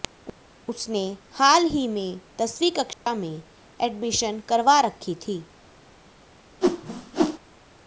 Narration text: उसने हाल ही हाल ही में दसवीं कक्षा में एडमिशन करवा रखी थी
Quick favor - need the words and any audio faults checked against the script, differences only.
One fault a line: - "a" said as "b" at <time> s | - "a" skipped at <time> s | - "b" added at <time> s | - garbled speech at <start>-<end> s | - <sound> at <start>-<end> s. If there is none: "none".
- "हाल ही" skipped at 1.9 s
- dropout at 2.9-3.1 s
- whoosh at 6.6-7.4 s